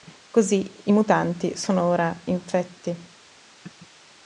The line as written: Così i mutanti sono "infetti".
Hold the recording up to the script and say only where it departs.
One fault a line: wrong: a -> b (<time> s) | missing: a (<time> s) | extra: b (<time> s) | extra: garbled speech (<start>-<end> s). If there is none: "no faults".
extra: ora (1.8 s)